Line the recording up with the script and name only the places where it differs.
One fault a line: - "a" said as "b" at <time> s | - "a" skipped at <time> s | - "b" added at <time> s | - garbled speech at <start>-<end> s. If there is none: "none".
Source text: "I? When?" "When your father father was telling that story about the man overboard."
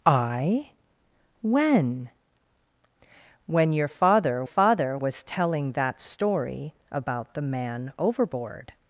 none